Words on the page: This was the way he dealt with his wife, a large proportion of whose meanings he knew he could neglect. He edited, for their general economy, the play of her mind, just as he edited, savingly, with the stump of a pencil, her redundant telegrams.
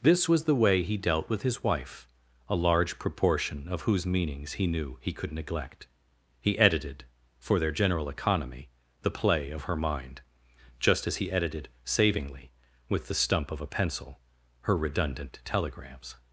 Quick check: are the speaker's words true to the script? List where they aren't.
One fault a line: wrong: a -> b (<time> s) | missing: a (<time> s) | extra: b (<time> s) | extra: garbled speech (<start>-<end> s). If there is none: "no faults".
no faults